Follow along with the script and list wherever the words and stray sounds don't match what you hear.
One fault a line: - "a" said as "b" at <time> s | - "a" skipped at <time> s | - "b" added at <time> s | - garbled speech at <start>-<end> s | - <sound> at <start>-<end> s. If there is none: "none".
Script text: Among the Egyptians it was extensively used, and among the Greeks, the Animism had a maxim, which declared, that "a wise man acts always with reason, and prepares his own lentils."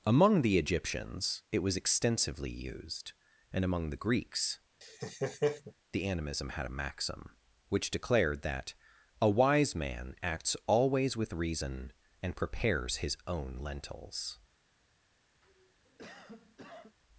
- laugh at 4.8-5.7 s
- cough at 15.4-17.0 s